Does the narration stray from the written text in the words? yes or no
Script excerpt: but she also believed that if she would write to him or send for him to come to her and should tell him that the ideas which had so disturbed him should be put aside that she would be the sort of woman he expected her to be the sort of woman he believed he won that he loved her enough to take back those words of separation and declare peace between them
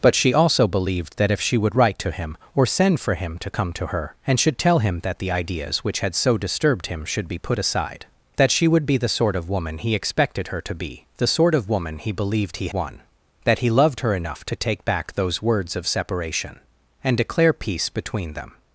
no